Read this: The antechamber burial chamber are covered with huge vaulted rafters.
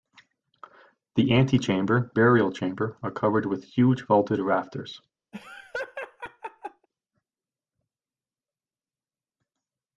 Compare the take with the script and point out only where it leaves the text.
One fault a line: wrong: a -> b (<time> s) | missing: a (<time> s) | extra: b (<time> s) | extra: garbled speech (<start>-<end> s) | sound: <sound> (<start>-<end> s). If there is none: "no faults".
sound: laugh (5.3-6.9 s)